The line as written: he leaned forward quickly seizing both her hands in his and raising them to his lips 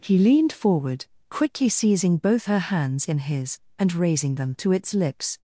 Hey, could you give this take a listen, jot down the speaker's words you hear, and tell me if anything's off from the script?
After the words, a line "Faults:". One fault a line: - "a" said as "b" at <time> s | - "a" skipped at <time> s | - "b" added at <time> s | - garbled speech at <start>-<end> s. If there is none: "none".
he leaned forward quickly seizing both her hands in his and raising them to its lips
Faults:
- "his" said as "its" at 4.7 s